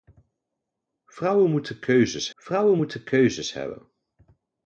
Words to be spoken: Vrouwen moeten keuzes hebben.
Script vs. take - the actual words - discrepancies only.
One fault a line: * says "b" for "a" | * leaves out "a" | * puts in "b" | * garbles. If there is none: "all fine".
* puts in "vrouwen moeten keuzes"